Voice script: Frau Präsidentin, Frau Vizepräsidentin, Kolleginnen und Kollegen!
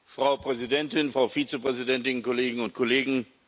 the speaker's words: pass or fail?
pass